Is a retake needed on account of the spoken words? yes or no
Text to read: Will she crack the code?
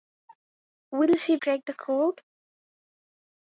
no